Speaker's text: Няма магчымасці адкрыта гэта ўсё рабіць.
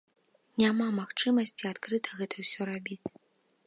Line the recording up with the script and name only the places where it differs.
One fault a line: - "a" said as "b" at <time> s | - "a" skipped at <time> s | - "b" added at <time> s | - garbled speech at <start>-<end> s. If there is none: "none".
none